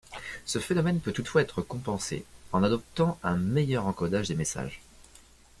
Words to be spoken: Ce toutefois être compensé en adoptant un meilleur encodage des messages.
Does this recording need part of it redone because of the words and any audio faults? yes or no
yes